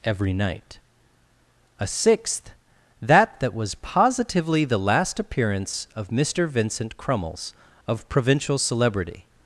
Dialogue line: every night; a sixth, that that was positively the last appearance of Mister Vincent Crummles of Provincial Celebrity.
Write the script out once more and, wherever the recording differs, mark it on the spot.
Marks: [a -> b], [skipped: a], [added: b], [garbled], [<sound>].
every night; a sixth, that that was positively the last appearance of Mister Vincent Crummles of Provincial Celebrity.